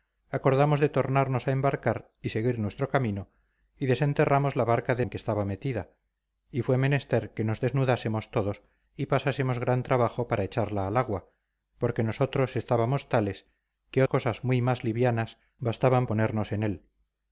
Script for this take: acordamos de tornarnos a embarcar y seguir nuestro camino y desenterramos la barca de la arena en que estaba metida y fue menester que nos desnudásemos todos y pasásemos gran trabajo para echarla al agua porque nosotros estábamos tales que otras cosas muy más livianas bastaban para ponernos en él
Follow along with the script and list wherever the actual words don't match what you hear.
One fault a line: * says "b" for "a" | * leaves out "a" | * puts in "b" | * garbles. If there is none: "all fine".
* leaves out "la arena"
* leaves out "otras"
* leaves out "para"